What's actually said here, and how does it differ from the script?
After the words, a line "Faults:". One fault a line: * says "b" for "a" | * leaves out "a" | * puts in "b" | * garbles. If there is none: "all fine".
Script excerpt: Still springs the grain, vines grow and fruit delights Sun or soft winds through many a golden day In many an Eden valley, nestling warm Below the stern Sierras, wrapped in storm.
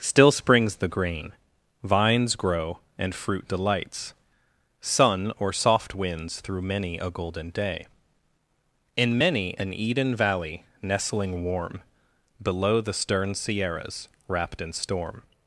Still springs the grain, vines grow and fruit delights Sun or soft winds through many a golden day In many an Eden valley, nestling warm Below the stern Sierras, wrapped in storm.
Faults:
all fine